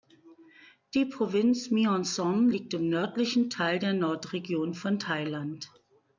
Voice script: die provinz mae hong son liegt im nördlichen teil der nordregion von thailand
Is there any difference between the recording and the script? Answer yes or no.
no